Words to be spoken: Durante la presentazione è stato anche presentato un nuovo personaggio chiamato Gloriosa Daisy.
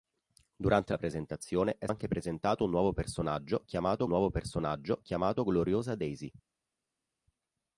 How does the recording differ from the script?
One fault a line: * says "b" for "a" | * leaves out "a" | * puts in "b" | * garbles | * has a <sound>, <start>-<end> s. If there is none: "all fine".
* leaves out "stato"
* puts in "nuovo personaggio chiamato"